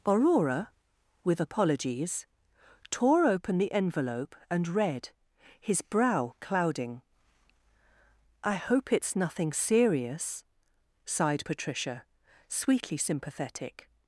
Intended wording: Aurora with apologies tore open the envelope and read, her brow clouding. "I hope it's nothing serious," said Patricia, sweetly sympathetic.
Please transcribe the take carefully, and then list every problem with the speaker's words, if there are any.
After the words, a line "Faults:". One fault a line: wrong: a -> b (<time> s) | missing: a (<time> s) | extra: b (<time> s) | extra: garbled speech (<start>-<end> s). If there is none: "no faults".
Aurora with apologies tore open the envelope and read, his brow clouding. "I hope it's nothing serious," sighed Patricia, sweetly sympathetic.
Faults:
wrong: her -> his (5.6 s)
wrong: said -> sighed (11.1 s)